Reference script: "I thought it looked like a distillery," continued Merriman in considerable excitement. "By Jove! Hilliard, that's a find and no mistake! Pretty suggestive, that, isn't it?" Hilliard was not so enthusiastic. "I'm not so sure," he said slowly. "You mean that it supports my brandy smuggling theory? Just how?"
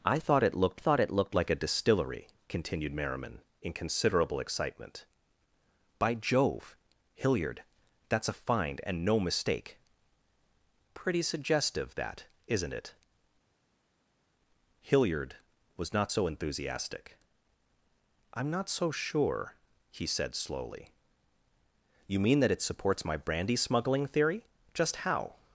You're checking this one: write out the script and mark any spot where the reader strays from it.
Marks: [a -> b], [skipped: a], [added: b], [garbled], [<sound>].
"I thought it looked [added: thought it looked] like a distillery," continued Merriman in considerable excitement. "By Jove! Hilliard, that's a find and no mistake! Pretty suggestive, that, isn't it?" Hilliard was not so enthusiastic. "I'm not so sure," he said slowly. "You mean that it supports my brandy smuggling theory? Just how?"